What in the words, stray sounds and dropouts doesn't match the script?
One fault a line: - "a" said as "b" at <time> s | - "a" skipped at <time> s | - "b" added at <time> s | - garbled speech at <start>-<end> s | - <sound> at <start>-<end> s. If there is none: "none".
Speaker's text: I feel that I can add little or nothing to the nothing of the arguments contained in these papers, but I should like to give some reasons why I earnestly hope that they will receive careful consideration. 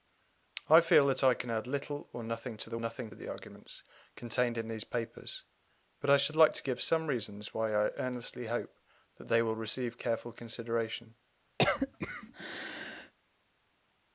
- cough at 11.6-13.1 s